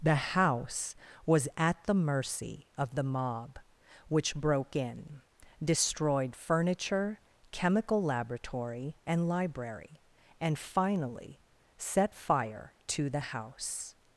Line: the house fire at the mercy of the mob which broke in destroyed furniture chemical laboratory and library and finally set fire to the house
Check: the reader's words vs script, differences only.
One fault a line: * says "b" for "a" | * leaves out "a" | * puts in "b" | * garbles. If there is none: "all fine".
* says "was" for "fire"